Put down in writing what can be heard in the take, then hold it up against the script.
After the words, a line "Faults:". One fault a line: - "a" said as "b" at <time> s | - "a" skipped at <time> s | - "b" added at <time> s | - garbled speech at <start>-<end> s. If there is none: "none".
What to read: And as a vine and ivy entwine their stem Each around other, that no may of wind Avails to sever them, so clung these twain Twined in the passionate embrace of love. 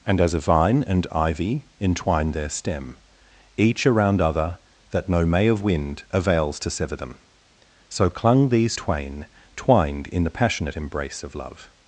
And as a vine and ivy entwine their stem Each around other, that no may of wind Avails to sever them, so clung these twain Twined in the passionate embrace of love.
Faults:
none